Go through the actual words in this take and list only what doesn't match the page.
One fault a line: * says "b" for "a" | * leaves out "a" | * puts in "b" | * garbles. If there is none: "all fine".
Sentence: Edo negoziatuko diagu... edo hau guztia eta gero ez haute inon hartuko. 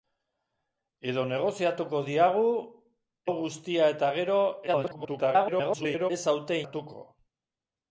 * leaves out "edo"
* garbles
* leaves out "inon"